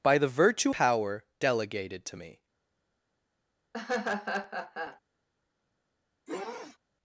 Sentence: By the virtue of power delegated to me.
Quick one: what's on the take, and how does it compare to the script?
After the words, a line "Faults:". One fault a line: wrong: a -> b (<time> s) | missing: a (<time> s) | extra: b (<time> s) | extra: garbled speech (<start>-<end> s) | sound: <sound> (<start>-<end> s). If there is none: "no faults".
By the virtue power delegated to me.
Faults:
missing: of (0.8 s)
sound: laugh (3.7-5.0 s)
sound: sniff (6.3-6.8 s)